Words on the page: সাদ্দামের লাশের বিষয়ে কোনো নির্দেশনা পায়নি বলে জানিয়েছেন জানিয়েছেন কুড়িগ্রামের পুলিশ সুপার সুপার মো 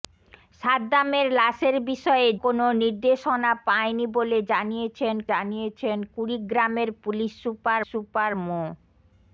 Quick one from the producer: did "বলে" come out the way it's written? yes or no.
yes